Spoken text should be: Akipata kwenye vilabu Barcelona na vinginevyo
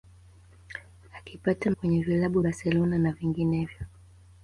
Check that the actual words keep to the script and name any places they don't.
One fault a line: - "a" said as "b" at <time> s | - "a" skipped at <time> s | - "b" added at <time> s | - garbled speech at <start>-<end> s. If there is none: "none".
none